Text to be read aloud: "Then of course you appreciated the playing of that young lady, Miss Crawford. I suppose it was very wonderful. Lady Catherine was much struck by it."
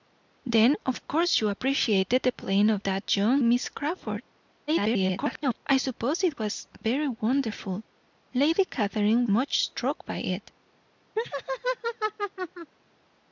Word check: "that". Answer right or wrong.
right